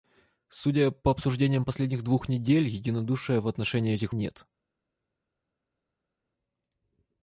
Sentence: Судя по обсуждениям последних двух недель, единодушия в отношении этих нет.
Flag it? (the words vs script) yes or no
no